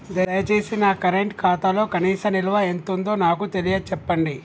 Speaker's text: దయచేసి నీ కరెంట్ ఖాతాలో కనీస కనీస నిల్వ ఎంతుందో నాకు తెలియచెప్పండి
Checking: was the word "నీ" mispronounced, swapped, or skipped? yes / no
yes